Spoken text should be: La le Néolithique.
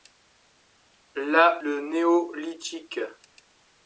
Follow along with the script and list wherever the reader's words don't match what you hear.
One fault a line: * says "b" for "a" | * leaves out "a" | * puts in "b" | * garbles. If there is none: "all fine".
all fine